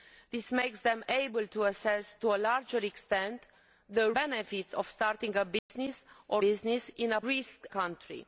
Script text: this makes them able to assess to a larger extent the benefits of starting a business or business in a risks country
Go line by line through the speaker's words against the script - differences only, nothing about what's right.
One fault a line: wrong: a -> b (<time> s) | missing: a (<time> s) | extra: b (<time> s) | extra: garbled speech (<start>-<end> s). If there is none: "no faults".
no faults